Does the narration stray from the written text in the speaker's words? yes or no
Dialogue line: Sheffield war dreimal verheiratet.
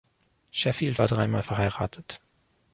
no